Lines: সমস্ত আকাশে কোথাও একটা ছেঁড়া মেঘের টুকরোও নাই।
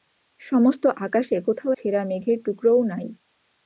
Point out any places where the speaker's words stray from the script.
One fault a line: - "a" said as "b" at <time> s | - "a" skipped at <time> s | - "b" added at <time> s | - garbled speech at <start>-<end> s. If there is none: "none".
- "একটা" skipped at 1.7 s